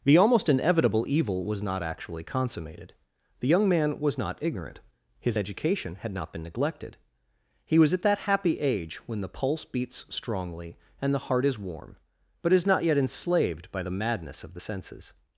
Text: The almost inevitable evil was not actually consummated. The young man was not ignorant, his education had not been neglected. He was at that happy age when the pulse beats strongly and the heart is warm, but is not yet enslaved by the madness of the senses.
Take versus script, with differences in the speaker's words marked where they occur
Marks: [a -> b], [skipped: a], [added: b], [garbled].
The almost inevitable evil was not actually consummated. The young man was not ignorant, his education had not been neglected. He was at that happy age when the pulse beats strongly and the heart is warm, but is not yet enslaved by the madness of the senses.